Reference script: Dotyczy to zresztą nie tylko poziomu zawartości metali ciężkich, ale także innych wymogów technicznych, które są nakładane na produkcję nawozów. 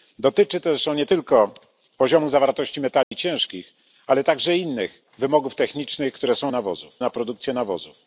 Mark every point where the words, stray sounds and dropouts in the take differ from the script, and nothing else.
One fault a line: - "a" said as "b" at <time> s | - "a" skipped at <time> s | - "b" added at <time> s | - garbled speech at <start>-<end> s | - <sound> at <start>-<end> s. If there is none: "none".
- dropout at 3.0-3.1 s
- "nakładane" said as "nawozów" at 6.5 s